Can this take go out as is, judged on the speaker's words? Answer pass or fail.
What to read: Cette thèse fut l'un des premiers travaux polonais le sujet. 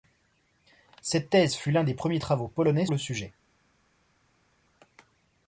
pass